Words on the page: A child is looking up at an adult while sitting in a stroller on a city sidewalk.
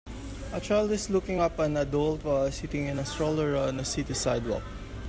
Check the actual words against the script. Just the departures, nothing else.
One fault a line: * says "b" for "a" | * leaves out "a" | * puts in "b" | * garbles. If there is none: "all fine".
all fine